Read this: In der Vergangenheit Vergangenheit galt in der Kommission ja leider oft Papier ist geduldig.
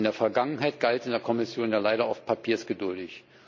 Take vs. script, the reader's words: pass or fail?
fail